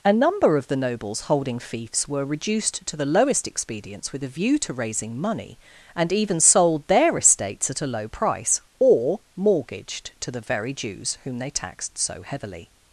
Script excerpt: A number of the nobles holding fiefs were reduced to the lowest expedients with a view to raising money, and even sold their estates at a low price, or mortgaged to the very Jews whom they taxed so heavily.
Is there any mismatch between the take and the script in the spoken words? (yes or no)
no